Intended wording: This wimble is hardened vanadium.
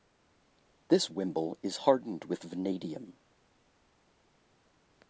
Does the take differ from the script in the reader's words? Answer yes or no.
yes